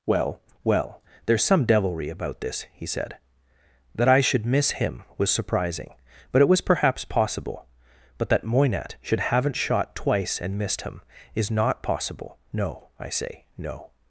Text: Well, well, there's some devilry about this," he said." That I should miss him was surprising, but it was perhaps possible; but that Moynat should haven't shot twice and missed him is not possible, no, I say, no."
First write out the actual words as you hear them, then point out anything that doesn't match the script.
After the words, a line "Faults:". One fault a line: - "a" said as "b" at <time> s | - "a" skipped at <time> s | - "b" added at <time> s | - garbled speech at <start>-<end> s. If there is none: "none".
Well, well, there's some devilry about this," he said." That I should miss him was surprising, but it was perhaps possible; but that Moynat should haven't shot twice and missed him is not possible, no, I say, no."
Faults:
none